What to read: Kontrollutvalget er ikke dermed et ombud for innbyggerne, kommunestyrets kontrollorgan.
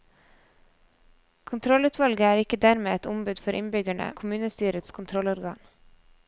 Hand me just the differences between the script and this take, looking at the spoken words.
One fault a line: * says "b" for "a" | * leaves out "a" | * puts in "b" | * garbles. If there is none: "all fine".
all fine